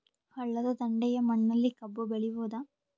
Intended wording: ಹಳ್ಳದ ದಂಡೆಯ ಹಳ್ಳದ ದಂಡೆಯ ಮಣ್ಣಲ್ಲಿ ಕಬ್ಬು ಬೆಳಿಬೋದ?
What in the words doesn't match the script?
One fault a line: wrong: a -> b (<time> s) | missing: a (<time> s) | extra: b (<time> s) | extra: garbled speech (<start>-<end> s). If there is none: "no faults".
missing: ಹಳ್ಳದ ದಂಡೆಯ (1.2 s)